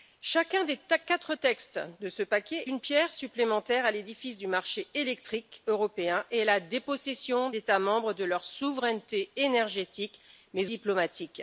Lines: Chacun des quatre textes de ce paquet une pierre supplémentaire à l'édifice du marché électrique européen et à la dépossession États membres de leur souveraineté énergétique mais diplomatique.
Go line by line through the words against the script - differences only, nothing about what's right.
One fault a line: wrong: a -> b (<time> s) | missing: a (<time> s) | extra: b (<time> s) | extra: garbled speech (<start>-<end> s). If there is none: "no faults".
no faults